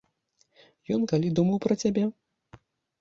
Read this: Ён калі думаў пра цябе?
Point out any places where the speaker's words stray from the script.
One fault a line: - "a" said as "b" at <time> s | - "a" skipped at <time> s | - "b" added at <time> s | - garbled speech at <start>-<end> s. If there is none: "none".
none